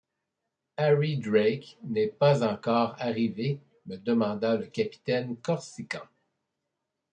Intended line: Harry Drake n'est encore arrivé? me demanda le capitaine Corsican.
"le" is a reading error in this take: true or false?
false